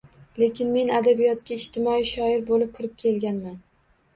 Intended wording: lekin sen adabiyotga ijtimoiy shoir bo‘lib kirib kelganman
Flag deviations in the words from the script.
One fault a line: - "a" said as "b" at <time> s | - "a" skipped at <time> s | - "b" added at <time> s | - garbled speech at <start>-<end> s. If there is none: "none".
- "sen" said as "men" at 0.8 s